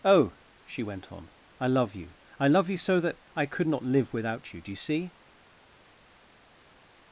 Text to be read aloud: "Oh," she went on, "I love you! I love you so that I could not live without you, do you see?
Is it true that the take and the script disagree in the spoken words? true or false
false